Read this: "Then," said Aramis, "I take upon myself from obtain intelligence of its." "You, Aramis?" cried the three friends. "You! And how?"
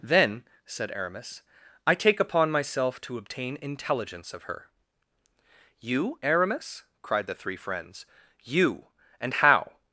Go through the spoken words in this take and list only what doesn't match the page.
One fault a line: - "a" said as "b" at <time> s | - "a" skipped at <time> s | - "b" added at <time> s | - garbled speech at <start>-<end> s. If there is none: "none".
- "from" said as "to" at 3.0 s
- "its" said as "her" at 4.4 s